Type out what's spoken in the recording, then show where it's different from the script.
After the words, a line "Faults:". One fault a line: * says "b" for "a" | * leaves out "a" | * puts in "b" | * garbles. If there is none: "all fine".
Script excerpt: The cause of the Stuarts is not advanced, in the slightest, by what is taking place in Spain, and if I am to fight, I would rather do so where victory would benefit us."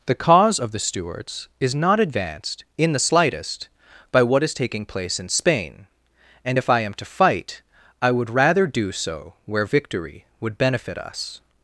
The cause of the Stuarts is not advanced, in the slightest, by what is taking place in Spain, and if I am to fight, I would rather do so where victory would benefit us."
Faults:
all fine